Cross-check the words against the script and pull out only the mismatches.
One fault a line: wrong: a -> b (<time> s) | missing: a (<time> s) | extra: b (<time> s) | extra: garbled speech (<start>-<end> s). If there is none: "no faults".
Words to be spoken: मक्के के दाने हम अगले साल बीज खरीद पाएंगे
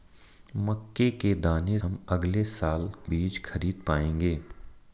no faults